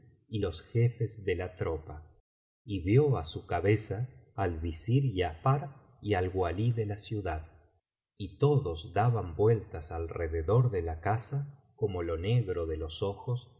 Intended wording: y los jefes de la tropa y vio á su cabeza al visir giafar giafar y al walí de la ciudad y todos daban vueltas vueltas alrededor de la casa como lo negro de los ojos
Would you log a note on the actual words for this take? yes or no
yes